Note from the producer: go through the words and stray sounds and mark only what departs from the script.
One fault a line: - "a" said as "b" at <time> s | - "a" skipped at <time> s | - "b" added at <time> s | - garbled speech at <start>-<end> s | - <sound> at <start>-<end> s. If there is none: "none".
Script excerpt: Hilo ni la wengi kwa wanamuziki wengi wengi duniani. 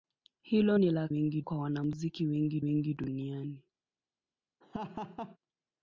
- laugh at 4.6-5.4 s